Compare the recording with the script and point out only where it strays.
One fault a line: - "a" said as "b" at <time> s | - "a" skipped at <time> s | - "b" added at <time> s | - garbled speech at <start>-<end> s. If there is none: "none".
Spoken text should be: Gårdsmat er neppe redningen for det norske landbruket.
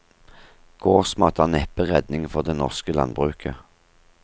none